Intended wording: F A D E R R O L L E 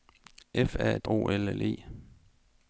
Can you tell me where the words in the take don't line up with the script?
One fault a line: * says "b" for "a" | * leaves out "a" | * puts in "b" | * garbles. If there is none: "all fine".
* leaves out "E R R"